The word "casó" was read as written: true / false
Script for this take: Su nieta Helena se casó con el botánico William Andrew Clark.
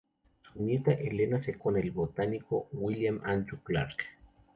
false